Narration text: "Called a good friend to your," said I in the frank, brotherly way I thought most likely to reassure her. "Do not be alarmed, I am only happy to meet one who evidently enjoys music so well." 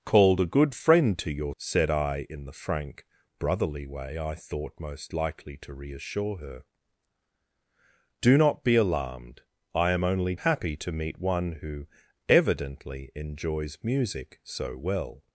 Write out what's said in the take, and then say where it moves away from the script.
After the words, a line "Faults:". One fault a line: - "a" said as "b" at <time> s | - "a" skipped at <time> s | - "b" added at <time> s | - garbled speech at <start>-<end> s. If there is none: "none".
"Called a good friend to your," said I in the frank, brotherly way I thought most likely to reassure her. "Do not be alarmed, I am only happy to meet one who evidently enjoys music so well."
Faults:
none